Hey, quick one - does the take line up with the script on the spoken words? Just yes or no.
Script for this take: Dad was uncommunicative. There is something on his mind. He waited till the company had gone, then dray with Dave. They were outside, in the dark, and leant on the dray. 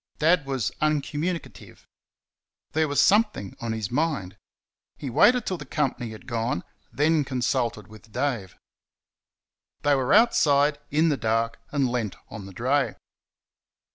no